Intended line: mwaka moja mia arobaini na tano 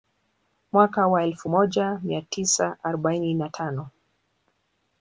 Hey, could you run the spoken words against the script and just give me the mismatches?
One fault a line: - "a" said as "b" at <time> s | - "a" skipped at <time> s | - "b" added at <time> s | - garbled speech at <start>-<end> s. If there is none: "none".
- "wa elfu" added at 1.1 s
- "tisa" added at 2.2 s